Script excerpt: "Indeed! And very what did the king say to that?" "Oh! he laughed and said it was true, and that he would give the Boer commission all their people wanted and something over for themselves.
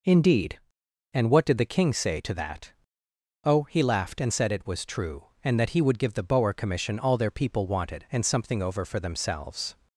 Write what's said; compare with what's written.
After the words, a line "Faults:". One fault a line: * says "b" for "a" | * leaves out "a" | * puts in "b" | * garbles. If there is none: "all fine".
"Indeed! And what did the king say to that?" "Oh! he laughed and said it was true, and that he would give the Boer commission all their people wanted and something over for themselves.
Faults:
* leaves out "very"